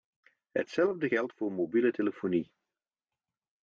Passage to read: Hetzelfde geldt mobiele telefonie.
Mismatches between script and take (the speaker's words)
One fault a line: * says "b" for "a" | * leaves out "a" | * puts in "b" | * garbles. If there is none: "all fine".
* puts in "voor"